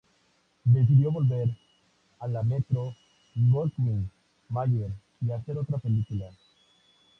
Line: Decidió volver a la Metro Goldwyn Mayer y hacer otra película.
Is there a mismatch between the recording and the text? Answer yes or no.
no